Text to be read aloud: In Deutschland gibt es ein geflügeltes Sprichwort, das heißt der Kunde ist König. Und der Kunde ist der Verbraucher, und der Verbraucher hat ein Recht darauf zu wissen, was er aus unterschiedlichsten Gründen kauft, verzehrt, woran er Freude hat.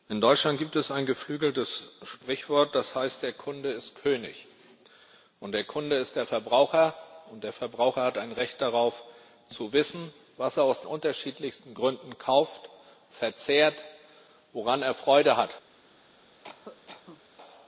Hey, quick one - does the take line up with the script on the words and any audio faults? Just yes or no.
no